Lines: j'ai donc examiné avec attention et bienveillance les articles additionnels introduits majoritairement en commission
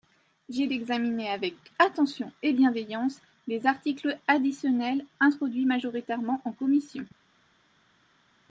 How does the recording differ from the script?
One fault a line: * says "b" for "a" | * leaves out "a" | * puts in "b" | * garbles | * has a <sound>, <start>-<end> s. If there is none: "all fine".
* leaves out "donc"